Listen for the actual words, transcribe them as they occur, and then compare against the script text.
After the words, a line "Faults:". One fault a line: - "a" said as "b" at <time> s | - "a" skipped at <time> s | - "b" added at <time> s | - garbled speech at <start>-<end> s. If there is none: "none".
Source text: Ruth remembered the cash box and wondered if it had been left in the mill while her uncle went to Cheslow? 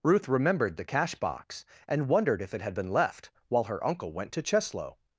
Ruth remembered the cash box and wondered if it had been left while her uncle went to Cheslow?
Faults:
- "in the mill" skipped at 3.3 s